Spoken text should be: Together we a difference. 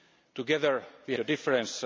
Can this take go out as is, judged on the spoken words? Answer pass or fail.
pass